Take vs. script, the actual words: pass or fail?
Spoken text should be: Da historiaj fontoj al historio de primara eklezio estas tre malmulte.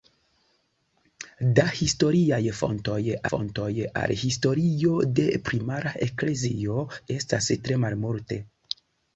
fail